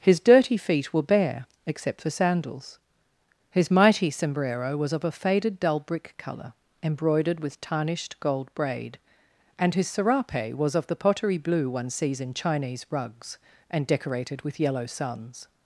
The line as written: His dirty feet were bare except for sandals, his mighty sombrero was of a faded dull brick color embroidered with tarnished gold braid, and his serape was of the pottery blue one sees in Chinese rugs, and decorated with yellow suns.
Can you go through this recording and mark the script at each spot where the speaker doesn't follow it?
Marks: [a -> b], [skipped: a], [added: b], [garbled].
His dirty feet were bare except for sandals, his mighty sombrero was of a faded dull brick color embroidered with tarnished gold braid, and his serape was of the pottery blue one sees in Chinese rugs, and decorated with yellow suns.